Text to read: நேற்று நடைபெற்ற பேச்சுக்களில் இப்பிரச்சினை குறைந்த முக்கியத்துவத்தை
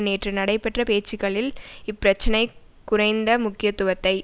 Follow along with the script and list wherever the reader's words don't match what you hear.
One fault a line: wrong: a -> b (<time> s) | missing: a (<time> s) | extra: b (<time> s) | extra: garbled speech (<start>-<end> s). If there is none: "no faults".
no faults